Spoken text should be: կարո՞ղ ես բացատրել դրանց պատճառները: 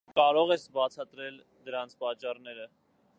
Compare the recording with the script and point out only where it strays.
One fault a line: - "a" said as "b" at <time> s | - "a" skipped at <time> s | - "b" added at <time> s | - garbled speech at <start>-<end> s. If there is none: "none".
none